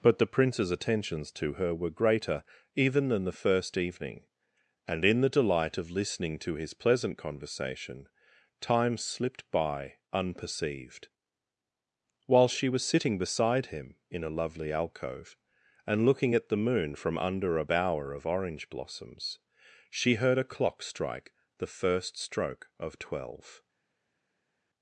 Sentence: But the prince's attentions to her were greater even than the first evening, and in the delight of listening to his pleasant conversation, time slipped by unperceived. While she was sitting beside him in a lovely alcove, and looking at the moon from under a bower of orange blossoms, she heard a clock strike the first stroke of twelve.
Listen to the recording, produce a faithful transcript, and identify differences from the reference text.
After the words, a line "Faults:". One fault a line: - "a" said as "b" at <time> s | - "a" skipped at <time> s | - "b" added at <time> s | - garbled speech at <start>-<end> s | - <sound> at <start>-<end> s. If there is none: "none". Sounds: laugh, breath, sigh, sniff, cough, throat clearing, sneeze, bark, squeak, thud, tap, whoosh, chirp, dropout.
But the prince's attentions to her were greater even than the first evening, and in the delight of listening to his pleasant conversation, time slipped by unperceived. While she was sitting beside him in a lovely alcove, and looking at the moon from under a bower of orange blossoms, she heard a clock strike the first stroke of twelve.
Faults:
none